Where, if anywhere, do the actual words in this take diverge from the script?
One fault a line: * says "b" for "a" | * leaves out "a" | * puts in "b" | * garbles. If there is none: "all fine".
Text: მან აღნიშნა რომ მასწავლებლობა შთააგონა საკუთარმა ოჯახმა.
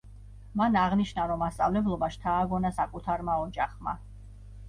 all fine